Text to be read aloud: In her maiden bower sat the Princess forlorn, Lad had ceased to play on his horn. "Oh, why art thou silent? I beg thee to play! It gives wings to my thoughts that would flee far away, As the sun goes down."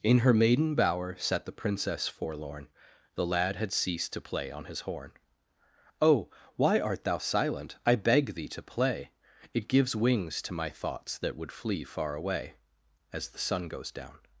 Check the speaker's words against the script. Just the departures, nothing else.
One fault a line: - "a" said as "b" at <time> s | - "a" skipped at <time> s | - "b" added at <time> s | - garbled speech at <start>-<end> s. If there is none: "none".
- "The" added at 3.1 s